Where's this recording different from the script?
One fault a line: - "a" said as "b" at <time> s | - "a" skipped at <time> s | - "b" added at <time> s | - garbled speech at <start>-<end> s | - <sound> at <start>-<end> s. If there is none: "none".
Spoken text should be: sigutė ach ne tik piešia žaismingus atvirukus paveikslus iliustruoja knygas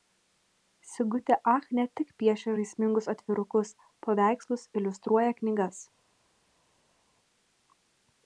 none